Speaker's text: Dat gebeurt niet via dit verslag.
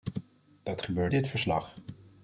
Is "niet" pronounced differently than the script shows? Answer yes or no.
yes